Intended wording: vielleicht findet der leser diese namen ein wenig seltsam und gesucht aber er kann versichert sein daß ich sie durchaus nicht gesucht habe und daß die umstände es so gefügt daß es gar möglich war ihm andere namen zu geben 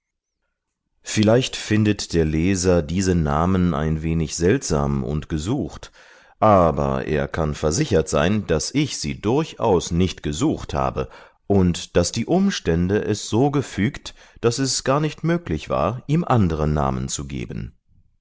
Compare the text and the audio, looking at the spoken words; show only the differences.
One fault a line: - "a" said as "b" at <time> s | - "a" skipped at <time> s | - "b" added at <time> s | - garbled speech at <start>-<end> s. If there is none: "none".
- "nicht" added at 15.0 s